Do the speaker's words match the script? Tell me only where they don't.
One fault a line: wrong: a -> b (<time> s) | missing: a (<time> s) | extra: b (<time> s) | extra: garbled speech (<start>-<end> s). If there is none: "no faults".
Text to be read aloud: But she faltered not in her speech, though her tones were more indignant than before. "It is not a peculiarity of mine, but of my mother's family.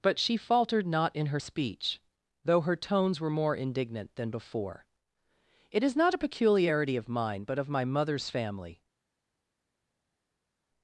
no faults